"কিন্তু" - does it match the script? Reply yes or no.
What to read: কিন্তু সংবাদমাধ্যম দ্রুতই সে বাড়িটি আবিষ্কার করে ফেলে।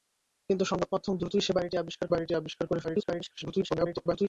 yes